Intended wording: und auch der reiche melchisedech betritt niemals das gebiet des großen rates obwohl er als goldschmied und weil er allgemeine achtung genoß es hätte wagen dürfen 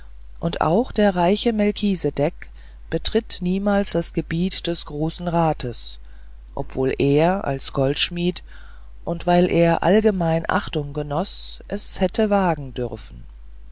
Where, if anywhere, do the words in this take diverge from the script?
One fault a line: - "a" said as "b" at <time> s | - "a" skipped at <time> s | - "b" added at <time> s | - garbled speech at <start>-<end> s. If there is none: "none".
none